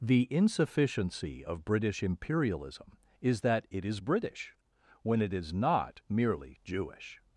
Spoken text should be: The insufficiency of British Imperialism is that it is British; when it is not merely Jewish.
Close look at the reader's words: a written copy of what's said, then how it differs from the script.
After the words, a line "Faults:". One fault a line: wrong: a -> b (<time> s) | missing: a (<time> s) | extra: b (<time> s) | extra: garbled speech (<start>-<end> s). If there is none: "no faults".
The insufficiency of British Imperialism is that it is British; when it is not merely Jewish.
Faults:
no faults